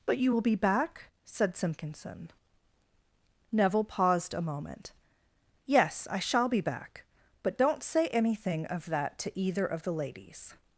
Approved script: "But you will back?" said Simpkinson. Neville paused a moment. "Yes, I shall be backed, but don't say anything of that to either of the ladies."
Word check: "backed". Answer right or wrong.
wrong